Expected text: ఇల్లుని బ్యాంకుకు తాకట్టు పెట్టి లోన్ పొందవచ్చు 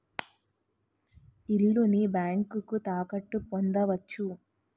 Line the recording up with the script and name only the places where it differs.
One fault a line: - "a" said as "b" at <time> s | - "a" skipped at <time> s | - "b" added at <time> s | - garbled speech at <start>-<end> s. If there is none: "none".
- "పెట్టి లోన్" skipped at 3.4 s